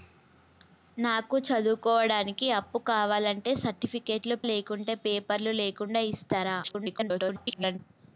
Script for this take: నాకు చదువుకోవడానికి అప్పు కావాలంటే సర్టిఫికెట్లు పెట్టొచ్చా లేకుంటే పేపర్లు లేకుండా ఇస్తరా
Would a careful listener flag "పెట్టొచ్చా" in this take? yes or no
yes